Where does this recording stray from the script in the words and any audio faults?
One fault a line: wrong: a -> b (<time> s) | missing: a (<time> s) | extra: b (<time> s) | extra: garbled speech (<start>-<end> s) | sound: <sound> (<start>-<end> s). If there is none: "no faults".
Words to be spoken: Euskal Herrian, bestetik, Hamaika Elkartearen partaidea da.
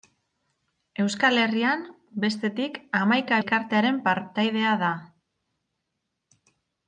no faults